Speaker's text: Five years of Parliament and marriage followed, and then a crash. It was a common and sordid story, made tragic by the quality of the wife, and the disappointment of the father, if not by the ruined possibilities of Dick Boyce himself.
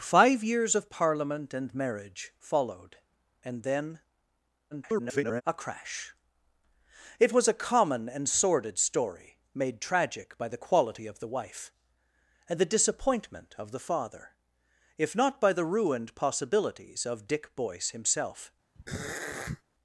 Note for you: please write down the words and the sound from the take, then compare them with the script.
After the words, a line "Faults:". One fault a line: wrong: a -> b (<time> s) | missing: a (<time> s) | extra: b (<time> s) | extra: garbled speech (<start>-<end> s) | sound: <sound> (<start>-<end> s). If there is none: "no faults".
Five years of Parliament and marriage followed, and then [garbled] a crash. It was a common and sordid story, made tragic by the quality of the wife, and the disappointment of the father, if not by the ruined possibilities of Dick Boyce himself.
Faults:
extra: garbled speech (4.7-5.4 s)
sound: throat clearing (18.7-19.6 s)